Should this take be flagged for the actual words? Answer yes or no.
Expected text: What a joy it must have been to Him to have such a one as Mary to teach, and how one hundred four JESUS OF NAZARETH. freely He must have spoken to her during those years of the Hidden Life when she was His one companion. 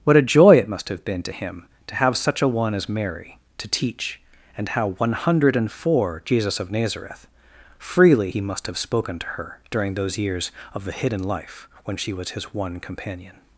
no